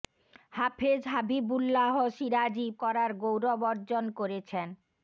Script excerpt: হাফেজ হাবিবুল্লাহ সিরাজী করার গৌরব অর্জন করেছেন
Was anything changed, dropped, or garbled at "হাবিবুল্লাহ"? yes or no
no